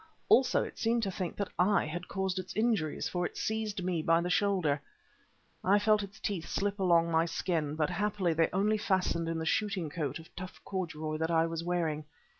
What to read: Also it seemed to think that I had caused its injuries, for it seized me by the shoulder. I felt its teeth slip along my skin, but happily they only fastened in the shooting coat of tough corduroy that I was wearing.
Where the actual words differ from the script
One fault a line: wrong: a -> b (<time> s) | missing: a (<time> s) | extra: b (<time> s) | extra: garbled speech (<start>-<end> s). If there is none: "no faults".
no faults